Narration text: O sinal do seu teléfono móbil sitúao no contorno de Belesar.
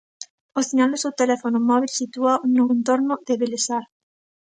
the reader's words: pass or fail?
pass